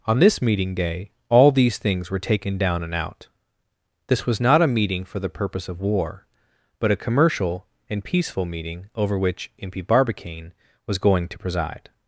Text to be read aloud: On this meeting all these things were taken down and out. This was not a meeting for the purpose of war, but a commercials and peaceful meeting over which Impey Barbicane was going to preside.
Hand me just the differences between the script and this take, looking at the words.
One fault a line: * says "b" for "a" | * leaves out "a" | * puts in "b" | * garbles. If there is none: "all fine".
* puts in "day"
* says "commercial" for "commercials"